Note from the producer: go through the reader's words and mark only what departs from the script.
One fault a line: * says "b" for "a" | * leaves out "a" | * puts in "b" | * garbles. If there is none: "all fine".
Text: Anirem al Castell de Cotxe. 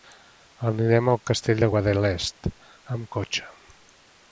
* puts in "Guadalest amb"